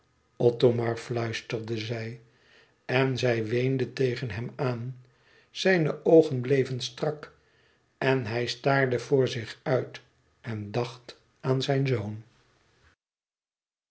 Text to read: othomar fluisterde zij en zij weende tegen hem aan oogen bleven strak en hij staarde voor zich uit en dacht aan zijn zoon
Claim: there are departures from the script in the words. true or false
true